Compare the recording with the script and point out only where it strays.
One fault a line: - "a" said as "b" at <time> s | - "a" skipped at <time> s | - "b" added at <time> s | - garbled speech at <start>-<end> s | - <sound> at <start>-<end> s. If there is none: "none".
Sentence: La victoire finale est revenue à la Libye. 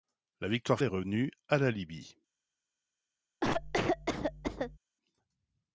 - "finale" skipped at 0.8 s
- cough at 3.4-4.8 s